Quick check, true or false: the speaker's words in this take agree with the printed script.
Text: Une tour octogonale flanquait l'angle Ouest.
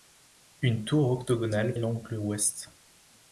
false